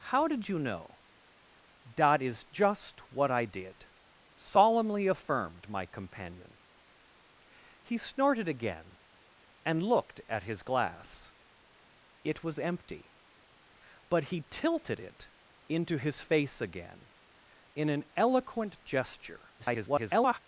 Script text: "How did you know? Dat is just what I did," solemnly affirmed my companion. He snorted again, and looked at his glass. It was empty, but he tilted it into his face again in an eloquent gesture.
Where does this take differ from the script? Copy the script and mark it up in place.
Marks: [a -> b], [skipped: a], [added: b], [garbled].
"How did you know? Dat is just what I did," solemnly affirmed my companion. He snorted again, and looked at his glass. It was empty, but he tilted it into his face again in an eloquent gesture. [garbled]